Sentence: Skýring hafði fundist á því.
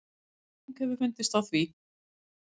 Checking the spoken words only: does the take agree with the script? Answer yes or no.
no